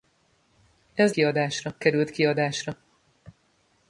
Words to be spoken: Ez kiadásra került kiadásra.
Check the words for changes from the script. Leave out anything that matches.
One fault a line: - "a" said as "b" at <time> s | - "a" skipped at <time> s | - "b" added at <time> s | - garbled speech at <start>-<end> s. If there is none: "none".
none